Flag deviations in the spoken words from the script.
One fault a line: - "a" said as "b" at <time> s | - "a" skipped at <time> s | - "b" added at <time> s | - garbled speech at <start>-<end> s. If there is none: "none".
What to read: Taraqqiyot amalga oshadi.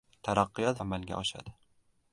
none